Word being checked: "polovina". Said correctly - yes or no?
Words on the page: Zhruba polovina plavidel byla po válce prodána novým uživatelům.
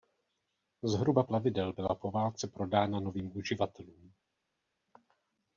no